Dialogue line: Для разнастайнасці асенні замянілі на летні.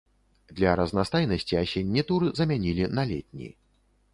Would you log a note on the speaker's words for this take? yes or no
yes